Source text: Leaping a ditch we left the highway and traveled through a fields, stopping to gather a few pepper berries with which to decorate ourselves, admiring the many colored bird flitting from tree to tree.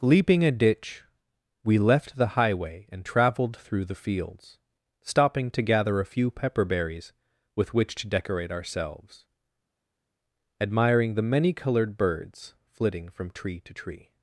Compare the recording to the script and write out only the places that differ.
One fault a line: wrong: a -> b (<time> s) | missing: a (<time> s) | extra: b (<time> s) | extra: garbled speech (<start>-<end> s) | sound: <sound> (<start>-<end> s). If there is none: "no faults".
wrong: a -> the (3.8 s)
wrong: bird -> birds (12.0 s)